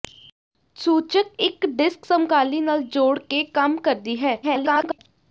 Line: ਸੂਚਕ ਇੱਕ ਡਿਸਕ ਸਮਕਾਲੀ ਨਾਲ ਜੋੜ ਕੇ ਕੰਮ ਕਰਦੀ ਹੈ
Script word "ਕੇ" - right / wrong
right